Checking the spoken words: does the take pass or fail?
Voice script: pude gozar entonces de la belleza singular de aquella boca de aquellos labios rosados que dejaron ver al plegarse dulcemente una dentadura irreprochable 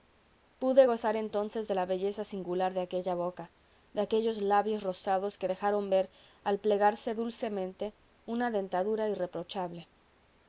pass